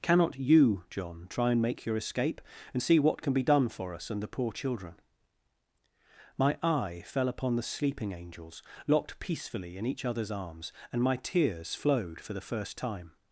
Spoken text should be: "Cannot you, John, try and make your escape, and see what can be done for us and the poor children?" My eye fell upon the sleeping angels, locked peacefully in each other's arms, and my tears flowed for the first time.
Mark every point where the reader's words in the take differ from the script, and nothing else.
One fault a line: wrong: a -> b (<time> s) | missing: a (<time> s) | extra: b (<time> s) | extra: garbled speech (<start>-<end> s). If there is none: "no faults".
no faults